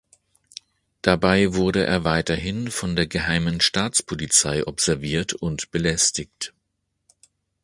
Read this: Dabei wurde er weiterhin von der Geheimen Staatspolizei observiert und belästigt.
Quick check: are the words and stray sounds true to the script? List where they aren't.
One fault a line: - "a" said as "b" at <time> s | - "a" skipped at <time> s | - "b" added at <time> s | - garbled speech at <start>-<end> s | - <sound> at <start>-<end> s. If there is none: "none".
none